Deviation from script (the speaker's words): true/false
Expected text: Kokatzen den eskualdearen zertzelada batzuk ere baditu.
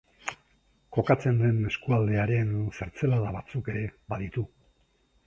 false